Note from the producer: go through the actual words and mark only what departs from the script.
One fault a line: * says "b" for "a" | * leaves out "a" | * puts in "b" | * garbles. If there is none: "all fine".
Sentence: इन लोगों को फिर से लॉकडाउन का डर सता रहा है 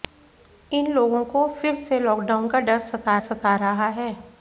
* puts in "सता"